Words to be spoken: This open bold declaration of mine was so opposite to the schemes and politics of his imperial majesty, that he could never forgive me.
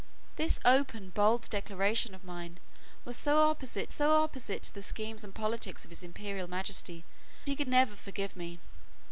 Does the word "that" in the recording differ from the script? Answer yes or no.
yes